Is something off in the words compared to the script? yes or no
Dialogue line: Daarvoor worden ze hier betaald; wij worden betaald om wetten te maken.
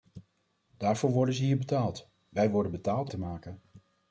yes